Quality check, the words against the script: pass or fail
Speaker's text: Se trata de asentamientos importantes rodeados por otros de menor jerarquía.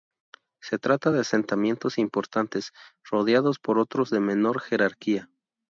pass